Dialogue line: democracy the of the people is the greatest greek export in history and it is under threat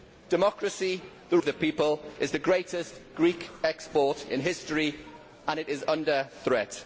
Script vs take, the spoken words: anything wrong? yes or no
no